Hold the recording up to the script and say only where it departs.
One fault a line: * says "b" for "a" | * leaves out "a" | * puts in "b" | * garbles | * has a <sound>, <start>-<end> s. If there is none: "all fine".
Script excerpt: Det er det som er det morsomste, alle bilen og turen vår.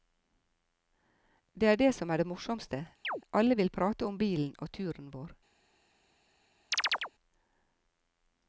* has a chirp, 3.0-3.2 s
* puts in "vil prate om"
* has a chirp, 6.7-7.1 s